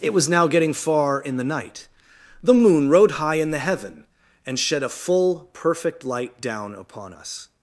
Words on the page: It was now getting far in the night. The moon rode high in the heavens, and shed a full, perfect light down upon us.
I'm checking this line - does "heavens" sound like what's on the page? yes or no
no